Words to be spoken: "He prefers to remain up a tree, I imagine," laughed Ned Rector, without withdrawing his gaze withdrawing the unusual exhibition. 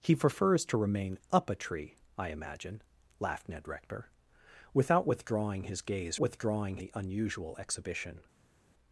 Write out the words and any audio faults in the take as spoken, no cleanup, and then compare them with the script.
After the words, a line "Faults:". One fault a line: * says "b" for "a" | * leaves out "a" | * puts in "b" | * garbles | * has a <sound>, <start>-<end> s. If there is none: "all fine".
"He prefers to remain up a tree, I imagine," laughed Ned Rector, without withdrawing his gaze withdrawing the unusual exhibition.
Faults:
all fine